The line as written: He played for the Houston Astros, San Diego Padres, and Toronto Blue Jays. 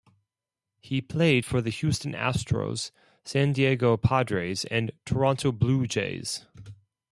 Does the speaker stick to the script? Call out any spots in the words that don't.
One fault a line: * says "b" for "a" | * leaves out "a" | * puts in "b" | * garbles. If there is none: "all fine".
all fine